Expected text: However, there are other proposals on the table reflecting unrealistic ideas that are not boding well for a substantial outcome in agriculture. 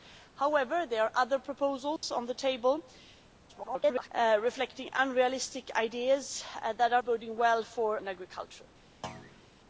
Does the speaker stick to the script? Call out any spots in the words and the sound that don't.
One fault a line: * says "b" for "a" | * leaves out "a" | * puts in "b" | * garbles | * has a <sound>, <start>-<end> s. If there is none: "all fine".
* has a dropout, 2.0-2.0 s
* garbles
* leaves out "not"
* leaves out "a substantial outcome"
* has a thud, 9.0-9.5 s